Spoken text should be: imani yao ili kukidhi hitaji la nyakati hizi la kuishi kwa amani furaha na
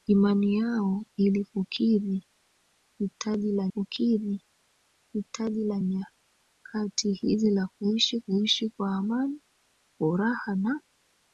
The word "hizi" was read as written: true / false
true